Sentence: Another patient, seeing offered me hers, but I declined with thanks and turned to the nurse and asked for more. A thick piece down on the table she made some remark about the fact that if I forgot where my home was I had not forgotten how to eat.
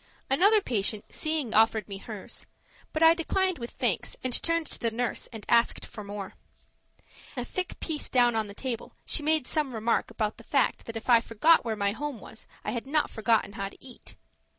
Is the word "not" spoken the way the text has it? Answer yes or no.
yes